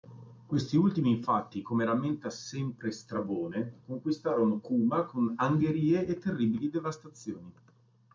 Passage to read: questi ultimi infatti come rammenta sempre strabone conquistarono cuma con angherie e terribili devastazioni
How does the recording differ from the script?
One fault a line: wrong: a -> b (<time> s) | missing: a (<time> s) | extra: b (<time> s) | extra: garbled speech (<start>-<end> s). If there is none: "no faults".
no faults